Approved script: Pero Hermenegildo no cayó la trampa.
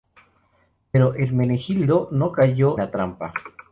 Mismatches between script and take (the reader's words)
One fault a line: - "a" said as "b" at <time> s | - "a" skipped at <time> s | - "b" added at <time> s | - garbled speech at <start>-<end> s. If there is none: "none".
none